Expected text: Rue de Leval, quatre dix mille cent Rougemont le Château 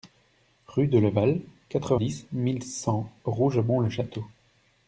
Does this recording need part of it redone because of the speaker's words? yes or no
no